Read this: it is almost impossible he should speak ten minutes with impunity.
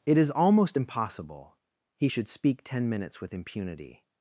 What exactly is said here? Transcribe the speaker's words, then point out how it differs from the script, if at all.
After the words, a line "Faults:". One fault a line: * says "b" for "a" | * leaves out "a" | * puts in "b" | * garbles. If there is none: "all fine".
it is almost impossible he should speak ten minutes with impunity.
Faults:
all fine